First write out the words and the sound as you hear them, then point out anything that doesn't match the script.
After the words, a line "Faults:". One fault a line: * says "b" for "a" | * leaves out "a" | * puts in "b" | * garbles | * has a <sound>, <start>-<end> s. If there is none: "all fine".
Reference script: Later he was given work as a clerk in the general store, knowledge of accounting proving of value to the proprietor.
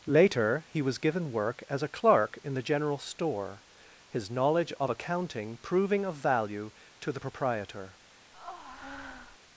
Later he was given work as a clerk in the general store, his knowledge of accounting proving of value to the proprietor.
Faults:
* puts in "his"
* has a breath, 8.3-9.4 s